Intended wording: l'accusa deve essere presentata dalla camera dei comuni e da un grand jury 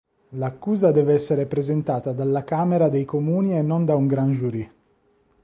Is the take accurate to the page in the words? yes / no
no